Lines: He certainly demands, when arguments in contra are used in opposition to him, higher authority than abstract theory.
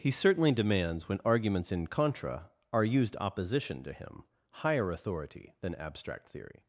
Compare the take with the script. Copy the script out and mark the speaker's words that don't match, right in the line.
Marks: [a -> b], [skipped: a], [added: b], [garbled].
He certainly demands, when arguments in contra are used [skipped: in] opposition to him, higher authority than abstract theory.